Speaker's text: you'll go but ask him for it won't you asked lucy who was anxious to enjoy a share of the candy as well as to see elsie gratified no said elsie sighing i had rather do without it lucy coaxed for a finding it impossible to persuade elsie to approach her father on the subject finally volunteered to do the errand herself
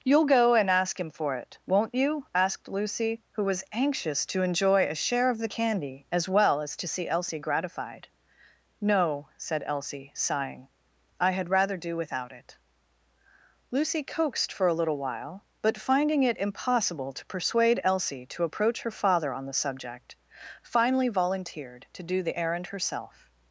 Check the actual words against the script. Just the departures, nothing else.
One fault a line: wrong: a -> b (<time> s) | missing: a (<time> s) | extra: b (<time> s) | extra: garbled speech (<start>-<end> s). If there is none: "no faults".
wrong: but -> and (0.6 s)
extra: little while but (14.8 s)